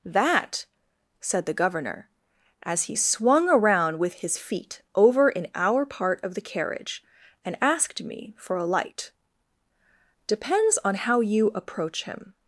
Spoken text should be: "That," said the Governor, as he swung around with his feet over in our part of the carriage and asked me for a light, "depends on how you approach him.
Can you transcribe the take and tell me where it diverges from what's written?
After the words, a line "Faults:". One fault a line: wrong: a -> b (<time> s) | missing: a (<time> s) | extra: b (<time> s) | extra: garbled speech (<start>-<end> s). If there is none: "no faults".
"That," said the Governor, as he swung around with his feet over in our part of the carriage and asked me for a light, "depends on how you approach him.
Faults:
no faults